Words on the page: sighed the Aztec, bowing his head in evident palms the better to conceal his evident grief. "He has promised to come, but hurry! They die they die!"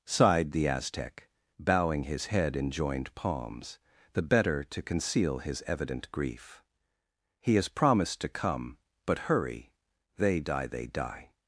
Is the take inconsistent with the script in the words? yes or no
yes